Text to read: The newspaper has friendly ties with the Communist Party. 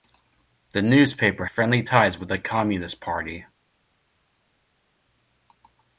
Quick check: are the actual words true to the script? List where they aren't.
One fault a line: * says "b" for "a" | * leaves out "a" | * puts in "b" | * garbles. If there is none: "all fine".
* leaves out "has"